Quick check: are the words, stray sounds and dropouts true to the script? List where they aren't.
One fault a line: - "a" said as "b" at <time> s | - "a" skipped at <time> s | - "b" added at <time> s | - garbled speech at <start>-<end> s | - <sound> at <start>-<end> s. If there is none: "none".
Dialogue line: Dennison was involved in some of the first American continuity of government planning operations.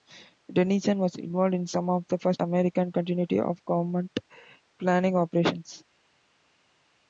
none